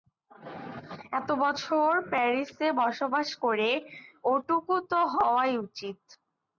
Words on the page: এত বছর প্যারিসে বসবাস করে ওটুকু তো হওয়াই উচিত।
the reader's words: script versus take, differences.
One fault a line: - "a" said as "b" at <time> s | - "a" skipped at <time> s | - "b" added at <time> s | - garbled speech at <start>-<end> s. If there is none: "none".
none